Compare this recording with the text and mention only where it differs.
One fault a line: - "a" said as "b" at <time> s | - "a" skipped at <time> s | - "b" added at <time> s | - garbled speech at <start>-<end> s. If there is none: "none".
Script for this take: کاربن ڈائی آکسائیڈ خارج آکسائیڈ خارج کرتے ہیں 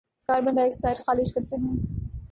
- "آکسائیڈ خارج" skipped at 1.3 s